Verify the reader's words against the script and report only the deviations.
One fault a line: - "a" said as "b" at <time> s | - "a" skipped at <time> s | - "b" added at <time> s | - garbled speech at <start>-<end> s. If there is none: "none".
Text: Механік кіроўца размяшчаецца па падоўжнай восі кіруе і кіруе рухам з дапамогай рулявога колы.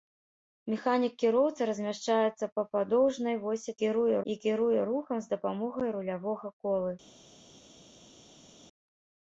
none